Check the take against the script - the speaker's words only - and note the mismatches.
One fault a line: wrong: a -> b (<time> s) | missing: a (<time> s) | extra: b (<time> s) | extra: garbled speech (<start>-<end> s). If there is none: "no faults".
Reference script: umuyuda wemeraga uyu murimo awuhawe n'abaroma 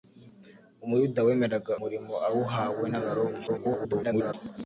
missing: uyu (1.7 s)
extra: garbled speech (3.5-4.3 s)